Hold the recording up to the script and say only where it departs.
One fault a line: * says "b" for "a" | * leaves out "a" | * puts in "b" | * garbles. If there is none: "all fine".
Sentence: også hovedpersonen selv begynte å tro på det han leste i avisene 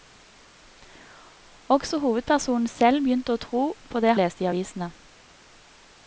* leaves out "han"